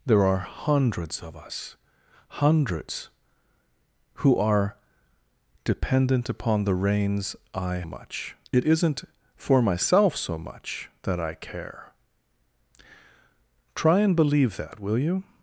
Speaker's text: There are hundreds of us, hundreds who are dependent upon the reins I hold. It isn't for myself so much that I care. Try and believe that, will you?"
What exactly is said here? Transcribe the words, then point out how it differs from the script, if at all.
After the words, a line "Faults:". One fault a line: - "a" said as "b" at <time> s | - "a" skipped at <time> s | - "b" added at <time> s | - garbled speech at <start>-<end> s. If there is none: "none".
There are hundreds of us, hundreds who are dependent upon the reins I much. It isn't for myself so much that I care. Try and believe that, will you?"
Faults:
- "hold" said as "much" at 7.8 s